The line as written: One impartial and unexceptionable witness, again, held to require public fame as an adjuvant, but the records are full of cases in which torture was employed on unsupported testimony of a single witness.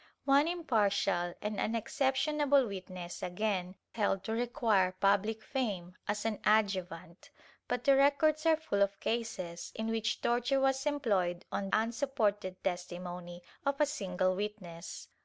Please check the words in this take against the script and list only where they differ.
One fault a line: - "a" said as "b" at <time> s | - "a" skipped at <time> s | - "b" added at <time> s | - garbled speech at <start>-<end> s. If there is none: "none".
none